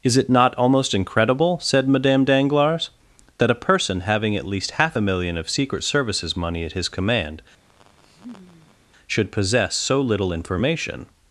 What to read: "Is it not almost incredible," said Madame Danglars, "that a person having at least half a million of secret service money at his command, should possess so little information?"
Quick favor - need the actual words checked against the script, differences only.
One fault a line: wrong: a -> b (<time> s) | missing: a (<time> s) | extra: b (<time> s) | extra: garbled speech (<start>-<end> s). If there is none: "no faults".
wrong: service -> services (5.8 s)